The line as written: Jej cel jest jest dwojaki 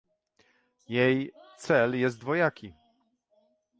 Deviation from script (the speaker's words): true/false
true